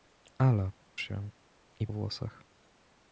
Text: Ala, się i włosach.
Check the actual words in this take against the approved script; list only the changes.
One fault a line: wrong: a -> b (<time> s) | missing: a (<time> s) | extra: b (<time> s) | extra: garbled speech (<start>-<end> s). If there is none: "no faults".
no faults